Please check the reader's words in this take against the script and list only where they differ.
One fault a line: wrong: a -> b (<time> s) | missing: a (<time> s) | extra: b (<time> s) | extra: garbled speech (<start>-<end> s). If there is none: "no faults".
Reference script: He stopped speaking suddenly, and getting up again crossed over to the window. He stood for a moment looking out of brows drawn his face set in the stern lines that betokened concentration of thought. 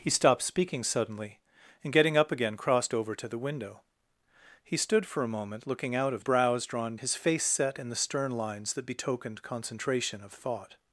no faults